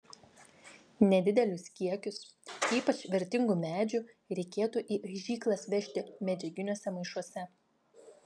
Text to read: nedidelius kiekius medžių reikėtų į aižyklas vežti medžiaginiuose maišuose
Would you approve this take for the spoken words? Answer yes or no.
no